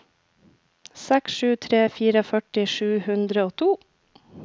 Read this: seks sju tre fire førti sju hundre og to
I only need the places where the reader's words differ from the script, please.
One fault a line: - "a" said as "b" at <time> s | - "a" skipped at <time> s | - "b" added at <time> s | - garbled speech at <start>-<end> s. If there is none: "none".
none